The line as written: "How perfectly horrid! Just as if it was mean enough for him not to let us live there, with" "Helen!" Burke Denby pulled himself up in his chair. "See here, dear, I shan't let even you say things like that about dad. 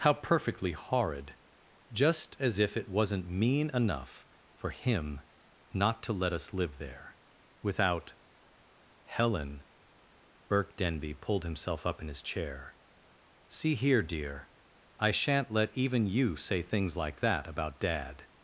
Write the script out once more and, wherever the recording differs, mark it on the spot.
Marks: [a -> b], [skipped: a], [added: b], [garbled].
"How perfectly horrid! Just as if it [was -> wasn't] mean enough for him not to let us live there, [with" -> without] "Helen!" Burke Denby pulled himself up in his chair. "See here, dear, I shan't let even you say things like that about dad.